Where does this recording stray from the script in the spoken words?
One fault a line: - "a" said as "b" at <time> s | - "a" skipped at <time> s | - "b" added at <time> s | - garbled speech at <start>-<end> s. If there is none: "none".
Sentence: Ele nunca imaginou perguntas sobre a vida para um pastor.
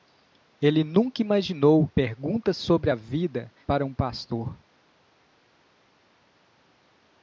none